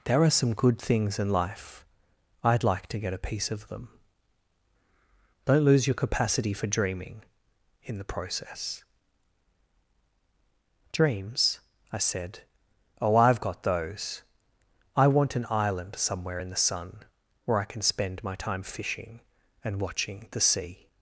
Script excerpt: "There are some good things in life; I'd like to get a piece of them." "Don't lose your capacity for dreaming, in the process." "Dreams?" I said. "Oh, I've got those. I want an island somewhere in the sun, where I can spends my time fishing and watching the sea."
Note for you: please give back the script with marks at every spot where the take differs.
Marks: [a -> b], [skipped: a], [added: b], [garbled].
"There are some good things in life; I'd like to get a piece of them." "Don't lose your capacity for dreaming, in the process." "Dreams?" I said. "Oh, I've got those. I want an island somewhere in the sun, where I can [spends -> spend] my time fishing and watching the sea."